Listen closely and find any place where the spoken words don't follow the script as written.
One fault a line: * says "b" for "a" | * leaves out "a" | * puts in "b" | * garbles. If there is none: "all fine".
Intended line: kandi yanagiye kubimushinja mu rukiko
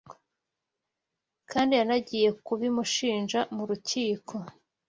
all fine